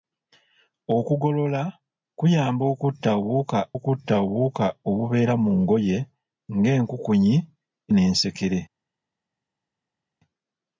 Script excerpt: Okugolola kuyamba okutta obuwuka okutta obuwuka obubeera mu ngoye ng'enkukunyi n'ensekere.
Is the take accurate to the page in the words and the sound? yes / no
yes